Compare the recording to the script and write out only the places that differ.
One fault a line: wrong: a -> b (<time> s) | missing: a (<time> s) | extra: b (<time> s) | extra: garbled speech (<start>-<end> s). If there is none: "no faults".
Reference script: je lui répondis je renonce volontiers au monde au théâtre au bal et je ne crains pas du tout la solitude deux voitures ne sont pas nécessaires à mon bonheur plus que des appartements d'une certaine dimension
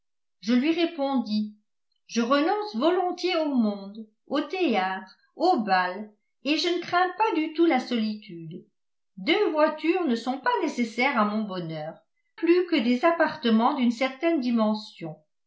no faults